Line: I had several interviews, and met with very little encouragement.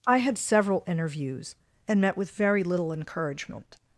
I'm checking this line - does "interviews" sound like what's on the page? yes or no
yes